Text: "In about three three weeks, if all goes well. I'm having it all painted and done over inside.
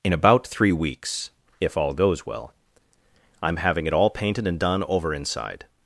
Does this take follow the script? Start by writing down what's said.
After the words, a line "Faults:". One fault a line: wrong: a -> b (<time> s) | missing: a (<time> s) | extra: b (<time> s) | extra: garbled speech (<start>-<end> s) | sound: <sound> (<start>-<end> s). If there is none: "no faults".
"In about three weeks, if all goes well. I'm having it all painted and done over inside.
Faults:
missing: three (0.7 s)